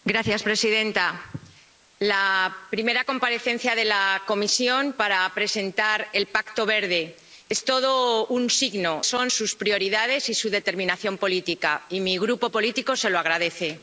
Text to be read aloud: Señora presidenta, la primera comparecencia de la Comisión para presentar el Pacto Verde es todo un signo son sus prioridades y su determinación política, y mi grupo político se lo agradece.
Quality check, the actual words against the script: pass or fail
pass